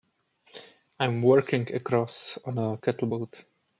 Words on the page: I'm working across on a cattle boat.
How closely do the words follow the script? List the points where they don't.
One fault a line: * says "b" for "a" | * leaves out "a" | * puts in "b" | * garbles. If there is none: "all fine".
all fine